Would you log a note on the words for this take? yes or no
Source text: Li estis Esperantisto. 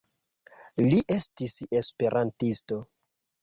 no